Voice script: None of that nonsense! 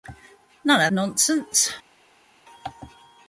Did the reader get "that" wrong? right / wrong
wrong